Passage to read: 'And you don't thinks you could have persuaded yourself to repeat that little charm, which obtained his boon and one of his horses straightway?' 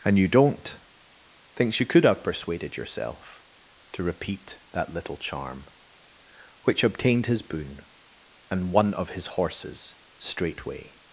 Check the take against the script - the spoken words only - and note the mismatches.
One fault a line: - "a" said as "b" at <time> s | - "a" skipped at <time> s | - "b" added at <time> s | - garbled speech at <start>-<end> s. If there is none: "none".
none